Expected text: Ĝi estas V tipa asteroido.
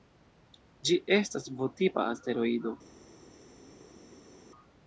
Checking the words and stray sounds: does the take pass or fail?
pass